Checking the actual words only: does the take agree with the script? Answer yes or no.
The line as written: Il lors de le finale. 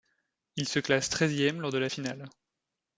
no